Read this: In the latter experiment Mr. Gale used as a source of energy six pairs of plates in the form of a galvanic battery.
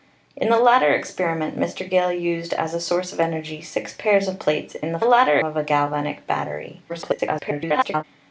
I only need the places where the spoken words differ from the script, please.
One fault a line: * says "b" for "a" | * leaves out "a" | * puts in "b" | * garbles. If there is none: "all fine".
* says "latter" for "form"
* garbles